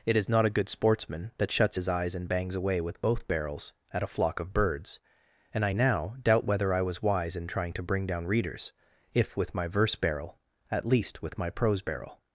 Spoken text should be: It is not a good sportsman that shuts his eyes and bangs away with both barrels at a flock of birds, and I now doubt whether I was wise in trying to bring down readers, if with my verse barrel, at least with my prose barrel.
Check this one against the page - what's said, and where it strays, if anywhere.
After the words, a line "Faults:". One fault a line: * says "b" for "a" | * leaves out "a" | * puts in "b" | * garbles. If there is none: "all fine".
It is not a good sportsman that shuts his eyes and bangs away with both barrels at a flock of birds, and I now doubt whether I was wise in trying to bring down readers, if with my verse barrel, at least with my prose barrel.
Faults:
all fine